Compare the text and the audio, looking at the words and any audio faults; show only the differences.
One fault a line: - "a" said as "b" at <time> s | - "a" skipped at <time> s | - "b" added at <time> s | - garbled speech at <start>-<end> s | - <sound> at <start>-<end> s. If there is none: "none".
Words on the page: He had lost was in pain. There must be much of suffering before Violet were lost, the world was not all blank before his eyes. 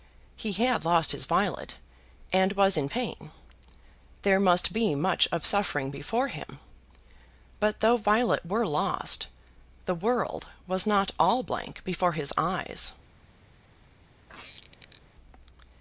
- "his Violet and" added at 1.1 s
- "him But though" added at 6.3 s
- squeak at 14.3-15.0 s